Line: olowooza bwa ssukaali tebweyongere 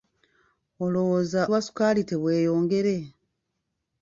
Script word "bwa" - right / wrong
right